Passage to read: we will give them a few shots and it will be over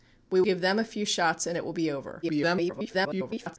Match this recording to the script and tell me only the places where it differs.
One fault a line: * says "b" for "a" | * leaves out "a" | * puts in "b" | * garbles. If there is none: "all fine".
* leaves out "will"
* garbles